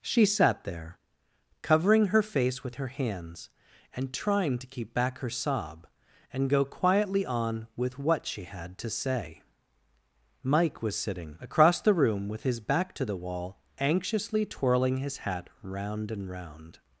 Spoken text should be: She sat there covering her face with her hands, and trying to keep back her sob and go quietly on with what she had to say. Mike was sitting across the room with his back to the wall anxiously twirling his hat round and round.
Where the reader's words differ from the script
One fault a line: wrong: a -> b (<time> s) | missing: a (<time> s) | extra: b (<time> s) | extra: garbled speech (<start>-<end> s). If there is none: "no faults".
no faults